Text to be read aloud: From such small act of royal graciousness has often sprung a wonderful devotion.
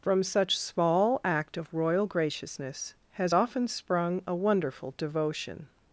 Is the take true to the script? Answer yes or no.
yes